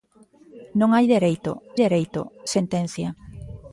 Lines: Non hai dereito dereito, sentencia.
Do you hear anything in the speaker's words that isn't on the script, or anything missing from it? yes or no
no